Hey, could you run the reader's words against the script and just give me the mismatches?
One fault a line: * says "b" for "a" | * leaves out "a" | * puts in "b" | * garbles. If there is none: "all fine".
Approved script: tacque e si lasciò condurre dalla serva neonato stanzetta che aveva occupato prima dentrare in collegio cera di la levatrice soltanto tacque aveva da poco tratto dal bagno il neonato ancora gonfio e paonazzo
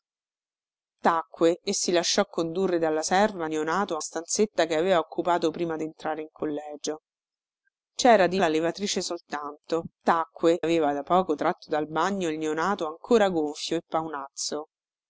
all fine